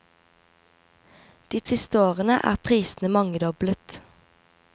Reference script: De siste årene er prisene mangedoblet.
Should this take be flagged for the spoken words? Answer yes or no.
no